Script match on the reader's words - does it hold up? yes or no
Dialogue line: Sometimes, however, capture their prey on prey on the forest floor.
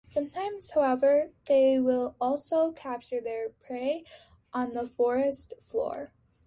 no